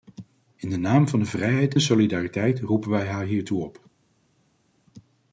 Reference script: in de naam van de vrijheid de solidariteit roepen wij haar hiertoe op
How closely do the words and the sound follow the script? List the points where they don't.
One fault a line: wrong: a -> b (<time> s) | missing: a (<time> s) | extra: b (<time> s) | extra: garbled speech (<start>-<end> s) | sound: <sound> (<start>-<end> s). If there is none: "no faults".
no faults